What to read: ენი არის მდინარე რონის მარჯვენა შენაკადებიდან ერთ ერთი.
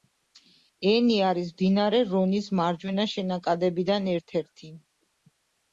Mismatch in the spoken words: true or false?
false